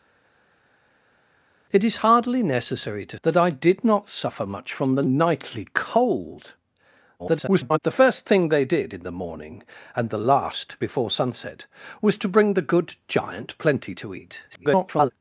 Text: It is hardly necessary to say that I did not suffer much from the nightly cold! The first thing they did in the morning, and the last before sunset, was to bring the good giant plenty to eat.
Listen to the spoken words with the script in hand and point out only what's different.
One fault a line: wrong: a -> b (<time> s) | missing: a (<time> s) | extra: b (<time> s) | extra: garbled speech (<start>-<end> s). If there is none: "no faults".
missing: say (3.2 s)
extra: garbled speech (7.2-7.8 s)
extra: garbled speech (14.5-15.1 s)